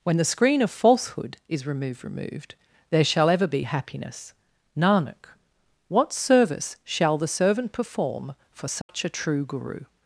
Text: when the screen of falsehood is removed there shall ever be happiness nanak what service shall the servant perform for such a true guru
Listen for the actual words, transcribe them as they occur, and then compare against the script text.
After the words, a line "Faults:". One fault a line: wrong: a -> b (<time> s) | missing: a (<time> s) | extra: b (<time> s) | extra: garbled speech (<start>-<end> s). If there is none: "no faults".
when the screen of falsehood is removed removed there shall ever be happiness nanak what service shall the servant perform for such a true guru
Faults:
extra: removed (2.0 s)